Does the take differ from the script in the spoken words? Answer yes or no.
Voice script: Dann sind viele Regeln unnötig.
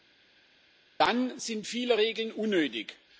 no